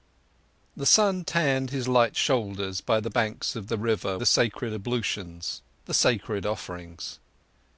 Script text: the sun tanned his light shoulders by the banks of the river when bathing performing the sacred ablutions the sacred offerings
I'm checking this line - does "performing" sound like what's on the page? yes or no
no